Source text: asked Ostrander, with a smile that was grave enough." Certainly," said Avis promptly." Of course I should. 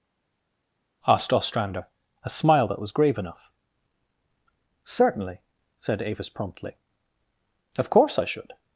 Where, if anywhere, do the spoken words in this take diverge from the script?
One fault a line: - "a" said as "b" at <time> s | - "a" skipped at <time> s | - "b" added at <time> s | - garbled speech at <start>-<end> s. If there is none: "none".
- "with" skipped at 1.9 s